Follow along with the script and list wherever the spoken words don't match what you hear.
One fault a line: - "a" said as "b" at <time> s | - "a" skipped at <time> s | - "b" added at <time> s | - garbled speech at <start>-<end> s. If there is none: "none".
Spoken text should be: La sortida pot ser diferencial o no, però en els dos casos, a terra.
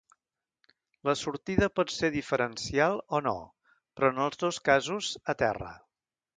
none